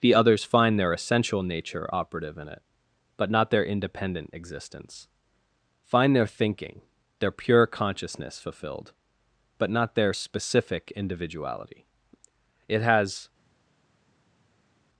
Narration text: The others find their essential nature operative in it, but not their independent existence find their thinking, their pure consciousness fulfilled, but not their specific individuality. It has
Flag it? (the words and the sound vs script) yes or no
no